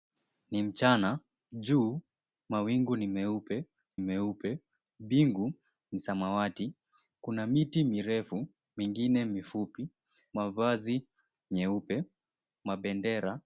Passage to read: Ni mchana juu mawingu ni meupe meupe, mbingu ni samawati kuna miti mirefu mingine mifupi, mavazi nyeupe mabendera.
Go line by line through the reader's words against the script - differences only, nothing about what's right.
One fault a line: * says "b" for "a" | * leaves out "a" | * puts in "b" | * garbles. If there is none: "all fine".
all fine